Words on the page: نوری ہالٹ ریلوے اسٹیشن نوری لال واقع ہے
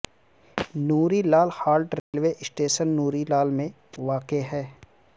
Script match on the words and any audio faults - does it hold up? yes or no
no